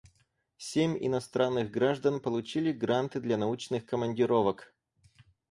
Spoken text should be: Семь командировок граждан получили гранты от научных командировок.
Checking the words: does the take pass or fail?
fail